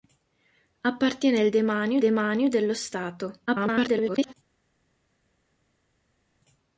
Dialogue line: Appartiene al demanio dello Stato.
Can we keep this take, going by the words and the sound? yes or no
no